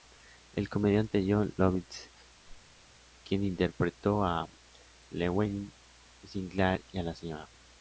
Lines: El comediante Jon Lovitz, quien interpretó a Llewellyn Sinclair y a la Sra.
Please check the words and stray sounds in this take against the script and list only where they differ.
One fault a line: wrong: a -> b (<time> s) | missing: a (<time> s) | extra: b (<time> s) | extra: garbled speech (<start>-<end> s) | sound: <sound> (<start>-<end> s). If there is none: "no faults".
sound: whoosh (2.4-2.8 s)